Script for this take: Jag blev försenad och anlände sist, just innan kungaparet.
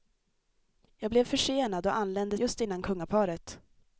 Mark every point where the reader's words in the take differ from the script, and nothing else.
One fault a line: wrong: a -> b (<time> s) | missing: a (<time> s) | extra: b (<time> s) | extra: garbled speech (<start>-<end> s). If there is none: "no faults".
missing: sist (2.4 s)